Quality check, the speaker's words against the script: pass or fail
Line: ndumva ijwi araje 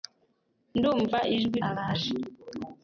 pass